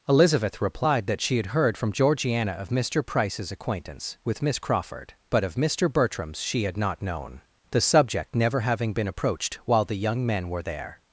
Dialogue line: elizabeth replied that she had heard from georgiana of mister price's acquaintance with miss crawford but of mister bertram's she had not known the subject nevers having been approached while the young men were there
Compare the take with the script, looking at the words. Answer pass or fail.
fail